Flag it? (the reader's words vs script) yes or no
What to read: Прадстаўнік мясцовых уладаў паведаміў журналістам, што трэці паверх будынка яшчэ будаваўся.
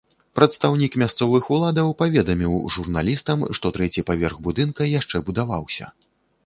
no